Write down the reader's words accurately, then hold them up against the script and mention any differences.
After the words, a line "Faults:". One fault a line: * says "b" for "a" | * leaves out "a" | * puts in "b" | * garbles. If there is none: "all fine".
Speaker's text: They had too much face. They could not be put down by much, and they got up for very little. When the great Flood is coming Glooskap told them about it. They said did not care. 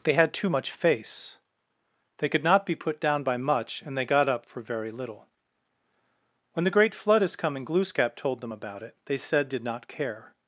They had too much face. They could not be put down by much, and they got up for very little. When the great Flood is coming Glooskap told them about it. They said did not care.
Faults:
all fine